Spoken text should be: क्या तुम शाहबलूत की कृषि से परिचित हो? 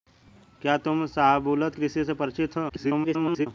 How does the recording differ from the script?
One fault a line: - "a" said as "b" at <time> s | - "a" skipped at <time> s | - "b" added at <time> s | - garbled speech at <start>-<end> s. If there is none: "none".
- "की" skipped at 1.8 s
- garbled speech at 2.7-3.5 s